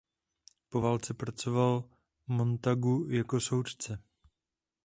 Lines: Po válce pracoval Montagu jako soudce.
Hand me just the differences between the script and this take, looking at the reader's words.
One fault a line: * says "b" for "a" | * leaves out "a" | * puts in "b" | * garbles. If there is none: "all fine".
all fine